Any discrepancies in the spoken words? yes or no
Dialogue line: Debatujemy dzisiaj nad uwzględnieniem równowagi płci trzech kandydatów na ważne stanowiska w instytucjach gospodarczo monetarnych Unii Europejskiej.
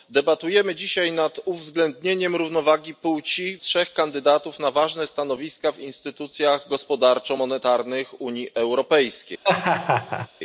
no